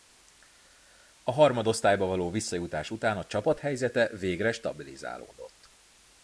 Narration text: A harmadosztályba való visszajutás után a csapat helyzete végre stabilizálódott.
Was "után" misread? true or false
false